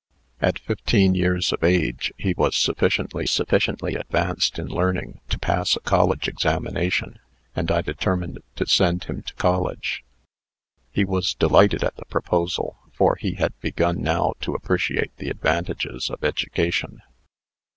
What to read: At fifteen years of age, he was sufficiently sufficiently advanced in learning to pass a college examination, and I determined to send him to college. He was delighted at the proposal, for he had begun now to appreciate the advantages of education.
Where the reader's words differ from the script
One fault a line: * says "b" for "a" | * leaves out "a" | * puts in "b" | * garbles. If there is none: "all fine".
all fine